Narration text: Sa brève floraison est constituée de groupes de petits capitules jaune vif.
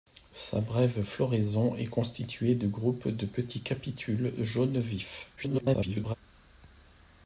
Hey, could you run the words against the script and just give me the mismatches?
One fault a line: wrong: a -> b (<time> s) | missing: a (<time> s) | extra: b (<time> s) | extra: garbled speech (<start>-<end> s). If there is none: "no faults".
extra: garbled speech (5.4-6.2 s)